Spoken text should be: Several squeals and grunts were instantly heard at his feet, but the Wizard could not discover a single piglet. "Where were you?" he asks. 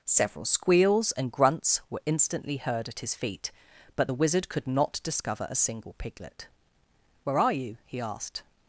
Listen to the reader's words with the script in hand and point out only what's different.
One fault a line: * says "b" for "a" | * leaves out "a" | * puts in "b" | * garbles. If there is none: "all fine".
* says "are" for "were"
* says "asked" for "asks"